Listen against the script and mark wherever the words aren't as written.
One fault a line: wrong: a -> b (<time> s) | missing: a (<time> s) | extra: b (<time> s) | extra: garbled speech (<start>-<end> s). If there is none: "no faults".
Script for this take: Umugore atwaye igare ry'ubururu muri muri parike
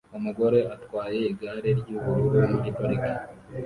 missing: muri (2.7 s)